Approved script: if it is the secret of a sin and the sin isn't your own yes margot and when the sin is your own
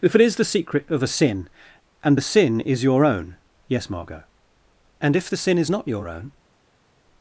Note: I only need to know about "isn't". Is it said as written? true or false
false